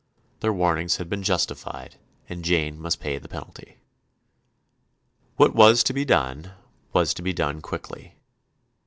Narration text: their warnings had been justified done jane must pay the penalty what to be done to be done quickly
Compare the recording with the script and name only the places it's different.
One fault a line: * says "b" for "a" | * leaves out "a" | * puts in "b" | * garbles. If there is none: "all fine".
* says "and" for "done"
* puts in "was"
* puts in "was"